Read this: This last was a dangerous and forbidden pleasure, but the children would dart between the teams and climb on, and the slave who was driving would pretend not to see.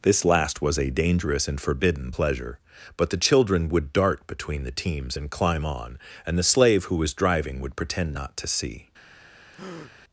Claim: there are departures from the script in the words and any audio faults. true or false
true